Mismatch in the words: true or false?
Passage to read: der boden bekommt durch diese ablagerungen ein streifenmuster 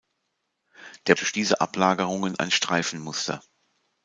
true